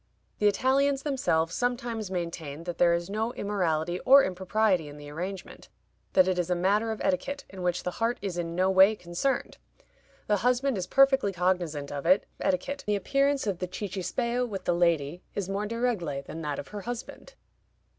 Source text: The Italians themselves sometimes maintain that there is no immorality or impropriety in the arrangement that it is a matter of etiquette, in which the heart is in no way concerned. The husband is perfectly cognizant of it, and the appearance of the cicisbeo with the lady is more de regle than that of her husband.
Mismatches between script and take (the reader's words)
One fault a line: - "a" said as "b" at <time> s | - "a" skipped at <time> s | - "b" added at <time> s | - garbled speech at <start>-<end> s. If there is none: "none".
- "and" said as "etiquette" at 12.4 s